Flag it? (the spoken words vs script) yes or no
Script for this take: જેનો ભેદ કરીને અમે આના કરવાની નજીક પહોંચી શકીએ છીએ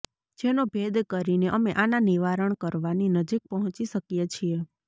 yes